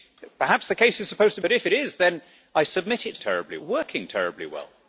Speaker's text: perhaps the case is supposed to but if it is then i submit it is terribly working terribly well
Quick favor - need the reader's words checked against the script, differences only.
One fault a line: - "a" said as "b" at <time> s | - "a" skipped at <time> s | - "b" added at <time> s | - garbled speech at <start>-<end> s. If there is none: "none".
none